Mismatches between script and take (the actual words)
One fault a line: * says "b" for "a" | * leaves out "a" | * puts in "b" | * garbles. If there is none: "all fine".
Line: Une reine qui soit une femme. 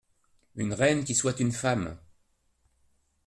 all fine